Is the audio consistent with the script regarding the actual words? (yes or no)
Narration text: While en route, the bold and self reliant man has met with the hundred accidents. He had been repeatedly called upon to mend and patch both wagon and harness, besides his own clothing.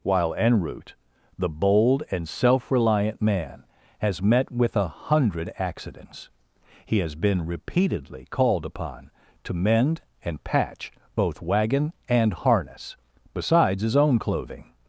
no